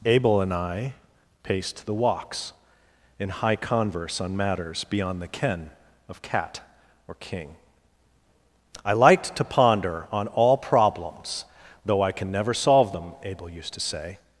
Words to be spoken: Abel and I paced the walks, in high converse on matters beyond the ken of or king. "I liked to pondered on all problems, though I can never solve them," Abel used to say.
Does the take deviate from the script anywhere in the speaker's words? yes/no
yes